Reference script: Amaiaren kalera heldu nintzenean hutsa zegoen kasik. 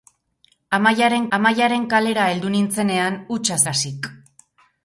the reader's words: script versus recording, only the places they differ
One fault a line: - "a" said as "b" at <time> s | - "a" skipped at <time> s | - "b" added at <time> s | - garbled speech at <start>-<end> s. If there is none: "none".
- "amaiaren" added at 1.4 s
- "zegoen" skipped at 3.6 s